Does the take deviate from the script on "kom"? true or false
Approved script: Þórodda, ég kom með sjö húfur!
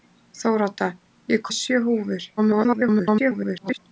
true